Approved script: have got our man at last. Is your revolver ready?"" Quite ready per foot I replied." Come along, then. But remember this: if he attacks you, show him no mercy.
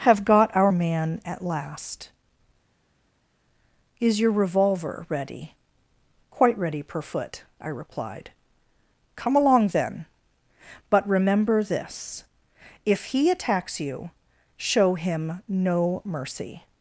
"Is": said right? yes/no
yes